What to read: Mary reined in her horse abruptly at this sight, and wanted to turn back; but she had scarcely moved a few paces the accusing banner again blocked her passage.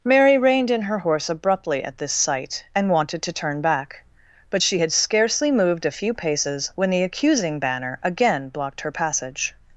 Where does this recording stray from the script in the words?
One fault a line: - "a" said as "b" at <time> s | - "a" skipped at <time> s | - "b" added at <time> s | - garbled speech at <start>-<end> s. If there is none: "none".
- "when" added at 6.8 s